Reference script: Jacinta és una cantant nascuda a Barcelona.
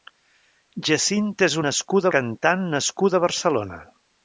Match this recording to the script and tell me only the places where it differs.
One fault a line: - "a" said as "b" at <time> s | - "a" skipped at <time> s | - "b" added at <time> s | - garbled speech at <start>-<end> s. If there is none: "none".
- "una" said as "nascuda" at 1.6 s